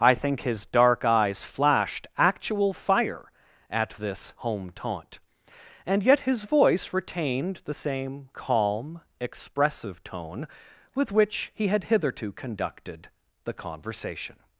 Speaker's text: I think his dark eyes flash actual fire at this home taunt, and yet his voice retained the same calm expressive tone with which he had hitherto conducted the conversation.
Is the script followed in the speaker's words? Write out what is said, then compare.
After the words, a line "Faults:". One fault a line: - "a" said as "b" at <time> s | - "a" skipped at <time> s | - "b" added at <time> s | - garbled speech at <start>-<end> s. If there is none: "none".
I think his dark eyes flashed actual fire at this home taunt, and yet his voice retained the same calm expressive tone with which he had hitherto conducted the conversation.
Faults:
- "flash" said as "flashed" at 1.4 s